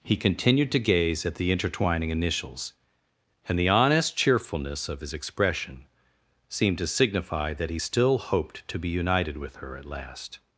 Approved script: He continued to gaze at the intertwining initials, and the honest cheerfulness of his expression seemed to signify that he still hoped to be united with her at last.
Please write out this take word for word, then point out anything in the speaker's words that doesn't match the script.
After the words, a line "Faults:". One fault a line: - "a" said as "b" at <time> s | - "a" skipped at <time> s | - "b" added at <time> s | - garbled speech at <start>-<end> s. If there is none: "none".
He continued to gaze at the intertwining initials, and the honest cheerfulness of his expression seemed to signify that he still hoped to be united with her at last.
Faults:
none